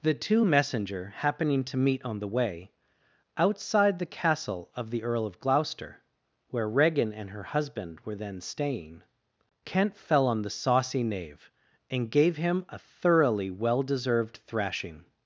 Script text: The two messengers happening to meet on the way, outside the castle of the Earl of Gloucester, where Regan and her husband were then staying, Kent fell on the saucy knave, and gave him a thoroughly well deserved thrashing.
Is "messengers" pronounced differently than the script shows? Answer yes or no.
yes